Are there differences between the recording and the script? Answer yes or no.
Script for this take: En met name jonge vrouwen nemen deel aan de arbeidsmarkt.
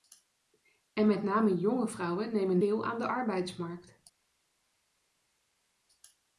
no